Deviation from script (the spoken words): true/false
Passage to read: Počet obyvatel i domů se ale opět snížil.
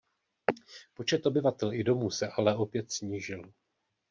false